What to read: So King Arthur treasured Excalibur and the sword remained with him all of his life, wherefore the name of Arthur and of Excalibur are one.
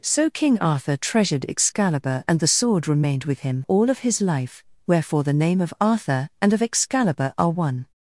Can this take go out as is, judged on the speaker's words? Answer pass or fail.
pass